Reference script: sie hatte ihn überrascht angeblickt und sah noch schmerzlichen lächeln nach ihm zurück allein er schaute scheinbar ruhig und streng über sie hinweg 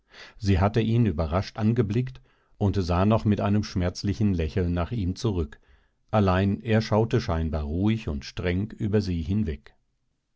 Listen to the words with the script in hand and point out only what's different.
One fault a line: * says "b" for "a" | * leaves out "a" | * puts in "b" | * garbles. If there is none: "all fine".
* puts in "mit einem"